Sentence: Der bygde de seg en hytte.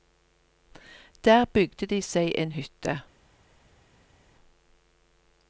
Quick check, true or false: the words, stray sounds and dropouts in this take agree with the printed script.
true